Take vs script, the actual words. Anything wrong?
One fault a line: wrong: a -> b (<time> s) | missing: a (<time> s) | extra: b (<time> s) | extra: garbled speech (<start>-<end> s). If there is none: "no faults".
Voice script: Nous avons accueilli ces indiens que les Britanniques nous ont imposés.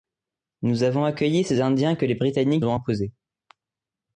missing: nous (2.6 s)